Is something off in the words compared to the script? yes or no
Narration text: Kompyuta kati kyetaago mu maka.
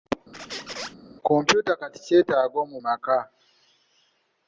no